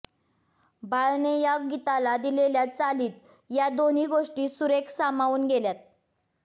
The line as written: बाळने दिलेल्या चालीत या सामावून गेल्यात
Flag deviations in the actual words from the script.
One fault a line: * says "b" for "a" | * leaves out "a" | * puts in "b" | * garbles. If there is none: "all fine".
* puts in "या गीताला"
* puts in "दोन्ही गोष्टी सुरेख"